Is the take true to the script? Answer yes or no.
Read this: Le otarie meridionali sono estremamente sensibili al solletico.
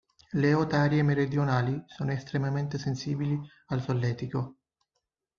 yes